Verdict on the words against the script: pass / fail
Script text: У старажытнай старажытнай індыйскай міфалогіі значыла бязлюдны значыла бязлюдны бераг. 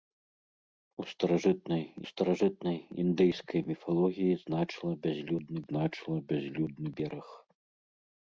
pass